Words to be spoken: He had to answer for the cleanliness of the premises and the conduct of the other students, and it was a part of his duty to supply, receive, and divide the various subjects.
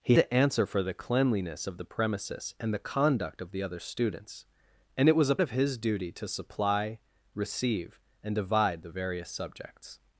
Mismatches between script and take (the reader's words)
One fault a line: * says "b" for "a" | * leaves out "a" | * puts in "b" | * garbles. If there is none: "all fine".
* leaves out "had"
* leaves out "part"